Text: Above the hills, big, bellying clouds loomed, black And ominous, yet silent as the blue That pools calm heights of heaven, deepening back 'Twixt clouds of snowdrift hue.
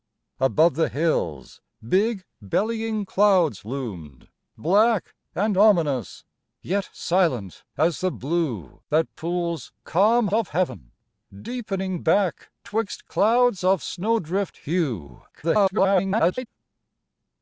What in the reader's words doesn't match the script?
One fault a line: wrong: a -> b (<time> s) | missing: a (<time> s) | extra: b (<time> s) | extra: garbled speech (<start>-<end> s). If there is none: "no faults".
missing: heights (10.3 s)
extra: garbled speech (15.3-16.5 s)